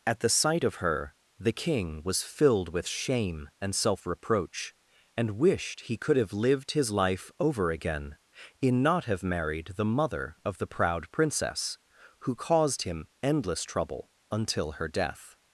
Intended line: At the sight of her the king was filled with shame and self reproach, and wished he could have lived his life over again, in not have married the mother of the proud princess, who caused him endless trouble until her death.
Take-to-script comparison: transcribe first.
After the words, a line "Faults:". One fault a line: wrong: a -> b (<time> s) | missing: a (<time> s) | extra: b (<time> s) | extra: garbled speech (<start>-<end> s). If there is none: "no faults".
At the sight of her the king was filled with shame and self reproach, and wished he could have lived his life over again, in not have married the mother of the proud princess, who caused him endless trouble until her death.
Faults:
no faults